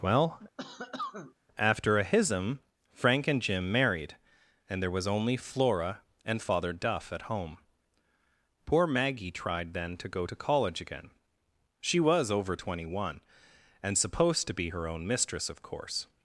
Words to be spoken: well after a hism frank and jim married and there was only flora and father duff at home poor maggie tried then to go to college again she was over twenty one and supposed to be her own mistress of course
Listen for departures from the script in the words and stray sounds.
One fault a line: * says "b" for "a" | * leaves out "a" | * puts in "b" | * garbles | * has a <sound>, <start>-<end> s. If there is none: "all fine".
* has a cough, 0.6-1.3 s